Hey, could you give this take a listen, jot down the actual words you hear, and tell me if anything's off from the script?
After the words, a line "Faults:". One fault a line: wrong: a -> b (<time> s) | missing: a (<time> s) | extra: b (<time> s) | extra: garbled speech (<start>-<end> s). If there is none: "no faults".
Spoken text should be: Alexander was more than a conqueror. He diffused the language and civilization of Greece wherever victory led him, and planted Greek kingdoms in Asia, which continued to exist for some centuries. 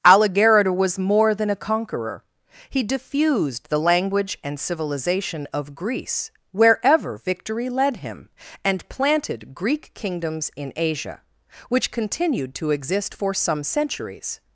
Alligator was more than a conqueror. He diffused the language and civilization of Greece wherever victory led him, and planted Greek kingdoms in Asia, which continued to exist for some centuries.
Faults:
wrong: Alexander -> Alligator (0.0 s)